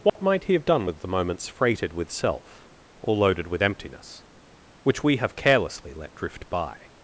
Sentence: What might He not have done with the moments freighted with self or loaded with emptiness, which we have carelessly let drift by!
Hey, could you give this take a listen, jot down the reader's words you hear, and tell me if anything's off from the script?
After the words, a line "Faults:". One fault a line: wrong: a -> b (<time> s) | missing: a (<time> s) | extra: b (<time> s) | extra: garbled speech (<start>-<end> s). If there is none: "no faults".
What might He have done with the moments freighted with self or loaded with emptiness, which we have carelessly let drift by!
Faults:
missing: not (0.5 s)